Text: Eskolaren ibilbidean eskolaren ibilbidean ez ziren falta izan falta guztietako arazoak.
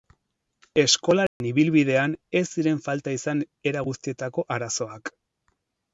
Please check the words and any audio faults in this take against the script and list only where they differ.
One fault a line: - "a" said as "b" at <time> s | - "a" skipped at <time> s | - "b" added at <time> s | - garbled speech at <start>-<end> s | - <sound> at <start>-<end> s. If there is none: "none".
- dropout at 1.3-1.4 s
- "eskolaren ibilbidean" skipped at 2.1 s
- "falta" said as "era" at 3.7 s